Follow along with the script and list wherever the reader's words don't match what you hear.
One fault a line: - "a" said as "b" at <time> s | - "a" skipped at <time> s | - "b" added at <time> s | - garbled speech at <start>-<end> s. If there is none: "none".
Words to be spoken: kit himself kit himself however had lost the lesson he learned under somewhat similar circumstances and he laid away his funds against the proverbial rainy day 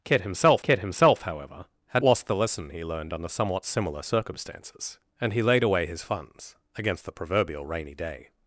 none